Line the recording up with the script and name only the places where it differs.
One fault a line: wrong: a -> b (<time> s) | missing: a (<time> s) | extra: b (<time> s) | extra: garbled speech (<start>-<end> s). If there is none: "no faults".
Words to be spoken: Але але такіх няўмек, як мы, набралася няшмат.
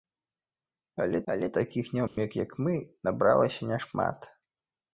no faults